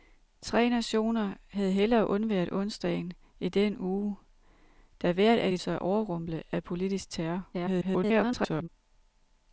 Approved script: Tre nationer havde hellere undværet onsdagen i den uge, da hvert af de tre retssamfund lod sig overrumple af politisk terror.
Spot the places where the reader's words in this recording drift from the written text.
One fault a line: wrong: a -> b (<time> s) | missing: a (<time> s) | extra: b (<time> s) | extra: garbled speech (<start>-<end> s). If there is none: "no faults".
missing: tre retssamfund lod (5.6 s)
extra: garbled speech (7.5-8.7 s)